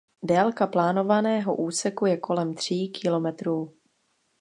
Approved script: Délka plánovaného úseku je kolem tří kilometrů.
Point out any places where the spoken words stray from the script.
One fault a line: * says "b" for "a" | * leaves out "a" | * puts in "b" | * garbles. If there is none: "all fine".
all fine